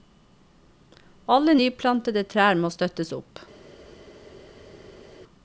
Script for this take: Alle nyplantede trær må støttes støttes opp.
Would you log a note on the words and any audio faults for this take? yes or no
yes